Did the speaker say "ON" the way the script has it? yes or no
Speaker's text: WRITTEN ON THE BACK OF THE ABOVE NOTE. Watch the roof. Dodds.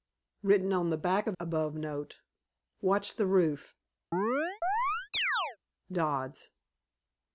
yes